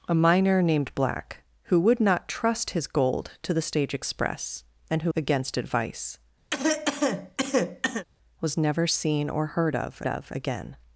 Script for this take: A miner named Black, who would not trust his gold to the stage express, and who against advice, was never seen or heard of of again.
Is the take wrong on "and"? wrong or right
right